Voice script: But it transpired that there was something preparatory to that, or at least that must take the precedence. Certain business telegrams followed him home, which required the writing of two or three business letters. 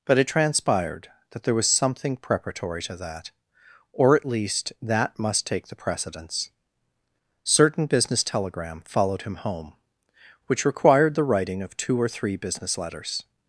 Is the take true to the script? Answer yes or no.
no